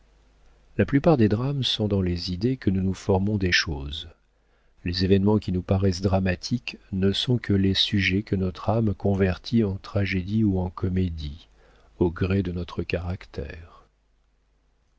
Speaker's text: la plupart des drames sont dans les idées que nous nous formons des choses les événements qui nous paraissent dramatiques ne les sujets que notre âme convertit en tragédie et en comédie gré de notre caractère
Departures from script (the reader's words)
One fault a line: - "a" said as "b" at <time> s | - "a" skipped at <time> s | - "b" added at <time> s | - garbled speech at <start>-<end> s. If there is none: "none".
- "sont que" added at 7.1 s
- "et" said as "ou" at 10.4 s
- "au" added at 12.0 s